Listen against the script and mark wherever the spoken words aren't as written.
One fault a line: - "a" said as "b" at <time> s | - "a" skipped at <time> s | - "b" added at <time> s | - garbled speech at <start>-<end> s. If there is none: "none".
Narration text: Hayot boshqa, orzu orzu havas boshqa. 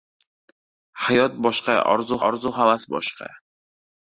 none